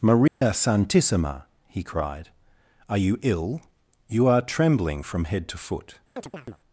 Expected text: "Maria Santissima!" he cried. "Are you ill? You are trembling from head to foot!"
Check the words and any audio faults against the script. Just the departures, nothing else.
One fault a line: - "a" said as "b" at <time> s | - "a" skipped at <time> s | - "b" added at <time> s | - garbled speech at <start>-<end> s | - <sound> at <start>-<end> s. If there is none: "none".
- dropout at 0.3-0.4 s
- chirp at 6.2-6.6 s